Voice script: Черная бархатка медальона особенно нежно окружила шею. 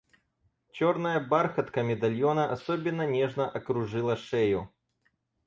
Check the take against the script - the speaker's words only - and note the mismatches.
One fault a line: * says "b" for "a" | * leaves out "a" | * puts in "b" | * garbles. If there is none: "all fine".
all fine